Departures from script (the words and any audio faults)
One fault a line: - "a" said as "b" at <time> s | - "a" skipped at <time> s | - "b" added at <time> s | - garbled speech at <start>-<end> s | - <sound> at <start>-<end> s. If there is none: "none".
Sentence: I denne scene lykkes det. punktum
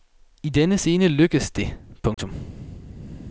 - dropout at 2.1-2.2 s